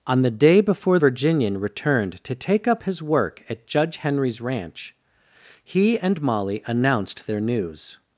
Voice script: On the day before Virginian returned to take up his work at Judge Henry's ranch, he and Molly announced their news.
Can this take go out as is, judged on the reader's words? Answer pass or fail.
pass